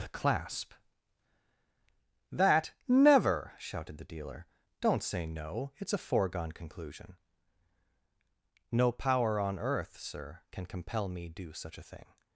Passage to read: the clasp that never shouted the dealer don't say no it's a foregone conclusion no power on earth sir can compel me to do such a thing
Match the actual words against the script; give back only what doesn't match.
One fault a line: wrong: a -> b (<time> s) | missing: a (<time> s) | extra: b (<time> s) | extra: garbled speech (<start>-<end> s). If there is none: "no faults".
missing: to (11.3 s)